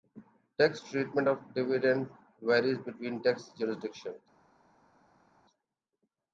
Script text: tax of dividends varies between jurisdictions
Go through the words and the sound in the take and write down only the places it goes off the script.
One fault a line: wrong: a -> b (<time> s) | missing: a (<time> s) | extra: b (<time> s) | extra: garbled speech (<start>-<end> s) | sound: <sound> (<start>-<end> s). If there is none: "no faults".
extra: treatment (0.8 s)
extra: tax (3.2 s)